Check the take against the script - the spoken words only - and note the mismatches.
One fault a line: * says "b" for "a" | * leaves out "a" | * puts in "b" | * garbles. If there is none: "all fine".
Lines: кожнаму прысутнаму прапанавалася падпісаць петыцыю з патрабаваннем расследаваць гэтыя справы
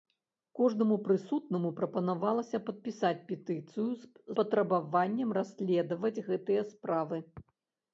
* leaves out "з"